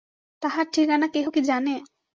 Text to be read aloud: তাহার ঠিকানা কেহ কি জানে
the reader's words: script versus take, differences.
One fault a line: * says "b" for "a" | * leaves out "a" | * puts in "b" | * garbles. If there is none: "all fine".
all fine